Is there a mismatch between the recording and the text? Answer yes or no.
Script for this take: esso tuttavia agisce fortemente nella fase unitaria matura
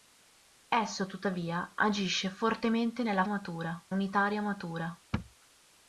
yes